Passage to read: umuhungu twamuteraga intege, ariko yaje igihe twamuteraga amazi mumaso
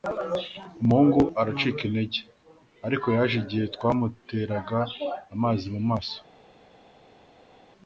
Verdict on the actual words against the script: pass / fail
fail